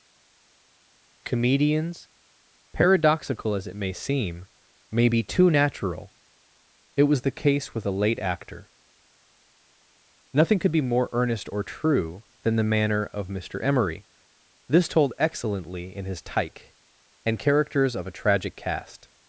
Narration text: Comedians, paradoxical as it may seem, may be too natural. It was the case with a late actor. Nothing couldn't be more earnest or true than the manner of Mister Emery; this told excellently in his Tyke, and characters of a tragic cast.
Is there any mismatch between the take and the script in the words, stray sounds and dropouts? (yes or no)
yes